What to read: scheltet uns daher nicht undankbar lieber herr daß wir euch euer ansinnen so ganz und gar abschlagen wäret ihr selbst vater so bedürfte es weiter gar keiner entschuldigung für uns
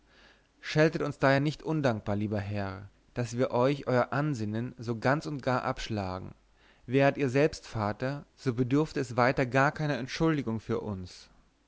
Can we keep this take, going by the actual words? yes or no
yes